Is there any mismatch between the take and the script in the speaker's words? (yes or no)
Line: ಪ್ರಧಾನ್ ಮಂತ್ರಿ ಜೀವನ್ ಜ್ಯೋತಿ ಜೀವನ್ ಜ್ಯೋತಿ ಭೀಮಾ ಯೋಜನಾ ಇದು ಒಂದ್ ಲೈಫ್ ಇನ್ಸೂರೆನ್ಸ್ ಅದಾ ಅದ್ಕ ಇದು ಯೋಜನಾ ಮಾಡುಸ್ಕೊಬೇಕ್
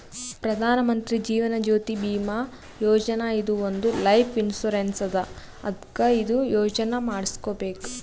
yes